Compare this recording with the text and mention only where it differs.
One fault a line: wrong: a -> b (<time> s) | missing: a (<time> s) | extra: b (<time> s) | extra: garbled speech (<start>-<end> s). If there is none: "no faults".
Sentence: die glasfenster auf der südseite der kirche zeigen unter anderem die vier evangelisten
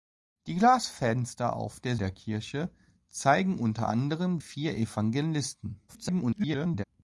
missing: südseite (1.9 s)
missing: die (4.4 s)
extra: garbled speech (5.9-6.8 s)